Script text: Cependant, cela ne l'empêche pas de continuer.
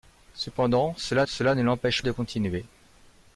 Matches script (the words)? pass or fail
fail